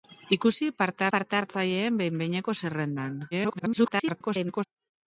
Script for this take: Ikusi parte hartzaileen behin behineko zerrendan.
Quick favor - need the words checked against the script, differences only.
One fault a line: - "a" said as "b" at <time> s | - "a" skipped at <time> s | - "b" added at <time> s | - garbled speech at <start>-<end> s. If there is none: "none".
- "parte" added at 1.1 s
- garbled speech at 3.3-4.6 s